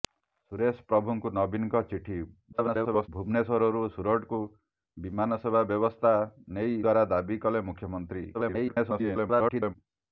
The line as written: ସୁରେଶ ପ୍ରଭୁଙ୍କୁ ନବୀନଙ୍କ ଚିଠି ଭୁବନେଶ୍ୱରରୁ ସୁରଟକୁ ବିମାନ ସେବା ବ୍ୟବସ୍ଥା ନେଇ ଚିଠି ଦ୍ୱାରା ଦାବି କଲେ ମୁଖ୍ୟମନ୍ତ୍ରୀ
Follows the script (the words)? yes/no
no